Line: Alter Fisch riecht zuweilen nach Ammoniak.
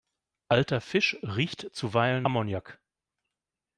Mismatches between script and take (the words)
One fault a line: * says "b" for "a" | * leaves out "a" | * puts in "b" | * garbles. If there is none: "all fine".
* leaves out "nach"